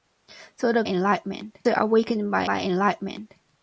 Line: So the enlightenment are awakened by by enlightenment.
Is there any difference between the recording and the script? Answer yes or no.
no